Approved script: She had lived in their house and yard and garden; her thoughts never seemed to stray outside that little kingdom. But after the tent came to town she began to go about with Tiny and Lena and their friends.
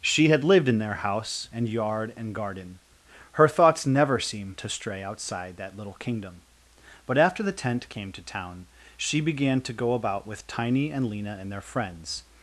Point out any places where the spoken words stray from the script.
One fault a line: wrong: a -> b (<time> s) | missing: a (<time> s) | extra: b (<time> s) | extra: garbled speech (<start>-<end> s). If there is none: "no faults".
no faults